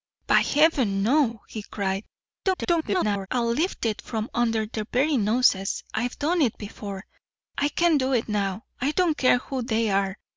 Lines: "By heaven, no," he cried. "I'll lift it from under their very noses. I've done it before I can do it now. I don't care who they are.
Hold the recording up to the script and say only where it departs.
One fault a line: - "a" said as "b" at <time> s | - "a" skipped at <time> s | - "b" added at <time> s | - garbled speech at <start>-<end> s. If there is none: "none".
- garbled speech at 2.4-3.3 s